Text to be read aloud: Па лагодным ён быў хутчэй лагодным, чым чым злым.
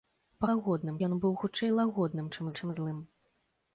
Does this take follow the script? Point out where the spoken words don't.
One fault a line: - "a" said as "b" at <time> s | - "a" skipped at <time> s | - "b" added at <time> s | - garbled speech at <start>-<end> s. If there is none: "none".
none